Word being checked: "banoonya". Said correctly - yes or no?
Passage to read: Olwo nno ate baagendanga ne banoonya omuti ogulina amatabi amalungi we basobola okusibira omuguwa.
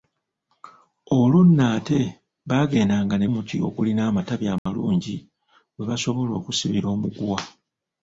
no